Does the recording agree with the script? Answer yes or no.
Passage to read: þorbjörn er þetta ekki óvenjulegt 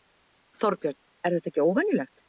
yes